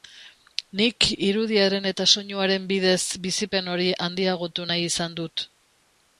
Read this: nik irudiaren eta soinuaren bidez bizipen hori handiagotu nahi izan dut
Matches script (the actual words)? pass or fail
pass